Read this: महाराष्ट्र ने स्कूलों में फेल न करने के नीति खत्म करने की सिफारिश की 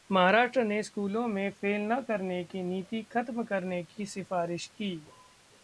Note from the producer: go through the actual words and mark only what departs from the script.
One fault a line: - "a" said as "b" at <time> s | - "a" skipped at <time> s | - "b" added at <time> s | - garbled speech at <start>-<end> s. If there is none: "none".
- "के" said as "की" at 2.4 s